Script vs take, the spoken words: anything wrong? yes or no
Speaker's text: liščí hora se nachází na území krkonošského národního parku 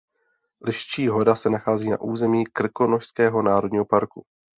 no